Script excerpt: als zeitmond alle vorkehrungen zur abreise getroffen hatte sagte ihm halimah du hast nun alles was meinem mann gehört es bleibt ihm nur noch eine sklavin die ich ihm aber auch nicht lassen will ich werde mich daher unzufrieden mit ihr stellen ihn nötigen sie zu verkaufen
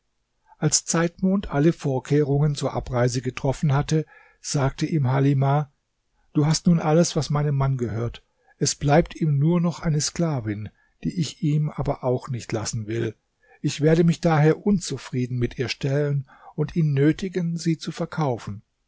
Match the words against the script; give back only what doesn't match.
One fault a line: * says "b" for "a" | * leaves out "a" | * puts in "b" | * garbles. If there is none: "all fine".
* puts in "und"